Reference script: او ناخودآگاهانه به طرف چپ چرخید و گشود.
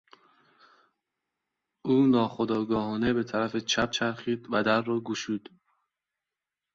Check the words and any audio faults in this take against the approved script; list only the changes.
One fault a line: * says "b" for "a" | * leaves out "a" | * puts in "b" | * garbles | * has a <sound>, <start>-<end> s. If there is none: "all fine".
* puts in "در را"